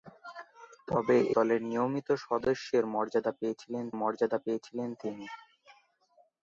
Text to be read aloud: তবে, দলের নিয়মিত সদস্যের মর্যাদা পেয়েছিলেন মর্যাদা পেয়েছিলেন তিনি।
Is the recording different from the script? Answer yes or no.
no